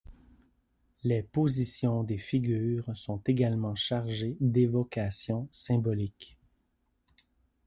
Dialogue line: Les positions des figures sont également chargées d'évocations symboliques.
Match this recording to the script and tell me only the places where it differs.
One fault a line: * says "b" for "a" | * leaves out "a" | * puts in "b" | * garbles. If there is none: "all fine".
all fine